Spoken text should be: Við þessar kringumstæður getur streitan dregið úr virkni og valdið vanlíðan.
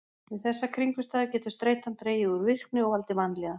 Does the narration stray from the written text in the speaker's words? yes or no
no